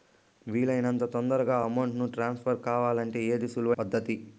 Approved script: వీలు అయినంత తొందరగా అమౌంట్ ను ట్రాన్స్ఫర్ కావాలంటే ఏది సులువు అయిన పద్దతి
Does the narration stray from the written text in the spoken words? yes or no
yes